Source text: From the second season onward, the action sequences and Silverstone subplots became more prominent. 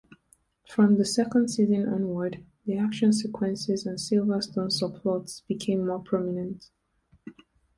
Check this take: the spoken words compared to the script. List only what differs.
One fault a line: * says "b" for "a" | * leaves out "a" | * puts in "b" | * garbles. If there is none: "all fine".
all fine